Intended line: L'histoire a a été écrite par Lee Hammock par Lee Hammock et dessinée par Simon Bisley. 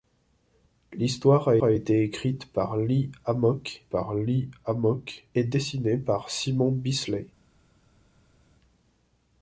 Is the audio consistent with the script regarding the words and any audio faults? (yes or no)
yes